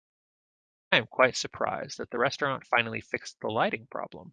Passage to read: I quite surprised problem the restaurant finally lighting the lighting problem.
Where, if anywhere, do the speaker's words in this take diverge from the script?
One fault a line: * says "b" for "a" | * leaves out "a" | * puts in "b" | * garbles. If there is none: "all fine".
* puts in "am"
* says "that" for "problem"
* says "fixed" for "lighting"